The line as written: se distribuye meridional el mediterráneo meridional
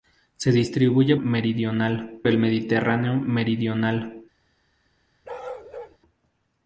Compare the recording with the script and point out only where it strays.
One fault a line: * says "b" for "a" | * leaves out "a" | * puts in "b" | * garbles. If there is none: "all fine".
all fine